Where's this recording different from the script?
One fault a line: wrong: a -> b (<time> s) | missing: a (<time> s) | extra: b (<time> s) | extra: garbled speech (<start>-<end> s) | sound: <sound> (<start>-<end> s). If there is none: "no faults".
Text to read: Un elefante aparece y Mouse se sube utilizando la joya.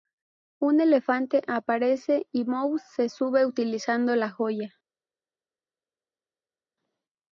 no faults